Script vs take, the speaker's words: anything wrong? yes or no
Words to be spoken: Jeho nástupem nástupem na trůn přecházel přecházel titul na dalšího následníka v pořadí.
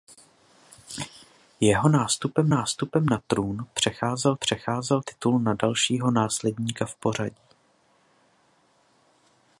no